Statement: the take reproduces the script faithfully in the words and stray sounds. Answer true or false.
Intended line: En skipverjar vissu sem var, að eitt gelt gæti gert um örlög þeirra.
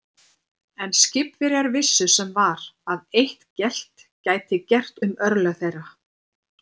true